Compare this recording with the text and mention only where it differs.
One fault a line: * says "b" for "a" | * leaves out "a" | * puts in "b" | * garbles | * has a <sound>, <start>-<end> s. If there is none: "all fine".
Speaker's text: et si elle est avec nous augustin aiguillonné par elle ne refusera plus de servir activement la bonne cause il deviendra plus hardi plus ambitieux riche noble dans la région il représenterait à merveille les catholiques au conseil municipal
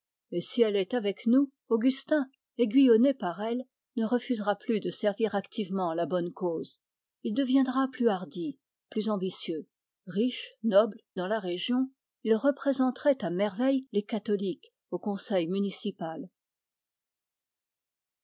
all fine